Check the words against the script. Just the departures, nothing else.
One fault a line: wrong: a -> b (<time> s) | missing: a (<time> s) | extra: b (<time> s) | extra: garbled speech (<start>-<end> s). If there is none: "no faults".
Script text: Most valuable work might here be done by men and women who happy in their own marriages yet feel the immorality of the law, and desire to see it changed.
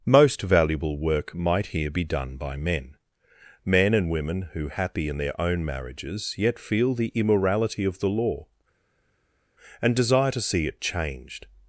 extra: men (3.6 s)